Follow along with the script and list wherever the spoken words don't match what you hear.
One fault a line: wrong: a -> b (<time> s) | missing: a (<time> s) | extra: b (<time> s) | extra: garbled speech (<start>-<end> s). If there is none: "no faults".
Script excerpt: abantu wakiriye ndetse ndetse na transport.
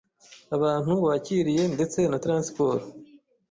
missing: ndetse (2.0 s)